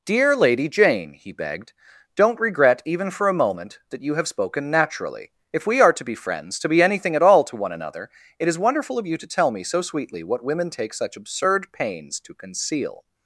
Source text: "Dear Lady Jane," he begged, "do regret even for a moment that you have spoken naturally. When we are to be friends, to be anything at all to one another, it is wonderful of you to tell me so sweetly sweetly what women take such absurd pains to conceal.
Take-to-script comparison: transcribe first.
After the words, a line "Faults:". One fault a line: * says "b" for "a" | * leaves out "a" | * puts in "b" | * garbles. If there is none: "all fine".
"Dear Lady Jane," he begged, "don't regret even for a moment that you have spoken naturally. If we are to be friends, to be anything at all to one another, it is wonderful of you to tell me so sweetly what women take such absurd pains to conceal.
Faults:
* says "don't" for "do"
* says "If" for "When"
* leaves out "sweetly"